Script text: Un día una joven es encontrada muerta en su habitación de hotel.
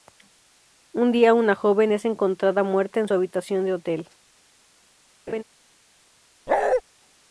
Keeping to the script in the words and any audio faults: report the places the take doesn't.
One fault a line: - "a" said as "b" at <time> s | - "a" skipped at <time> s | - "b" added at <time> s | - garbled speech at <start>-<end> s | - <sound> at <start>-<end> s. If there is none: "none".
- laugh at 5.3-5.4 s
- bark at 6.5-6.8 s